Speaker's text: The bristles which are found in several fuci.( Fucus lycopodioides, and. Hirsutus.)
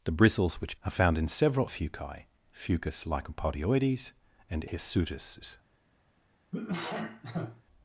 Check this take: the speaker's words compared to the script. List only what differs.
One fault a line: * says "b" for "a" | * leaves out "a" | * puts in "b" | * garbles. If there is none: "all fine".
all fine